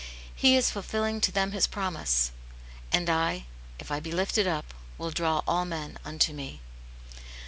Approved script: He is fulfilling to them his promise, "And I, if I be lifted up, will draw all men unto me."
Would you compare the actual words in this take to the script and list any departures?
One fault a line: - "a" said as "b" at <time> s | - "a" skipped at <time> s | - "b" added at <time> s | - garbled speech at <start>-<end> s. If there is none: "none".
none